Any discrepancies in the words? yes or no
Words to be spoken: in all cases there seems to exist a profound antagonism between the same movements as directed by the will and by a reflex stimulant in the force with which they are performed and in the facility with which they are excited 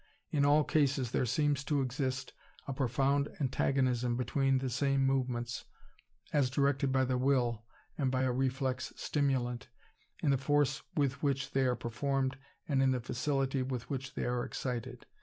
no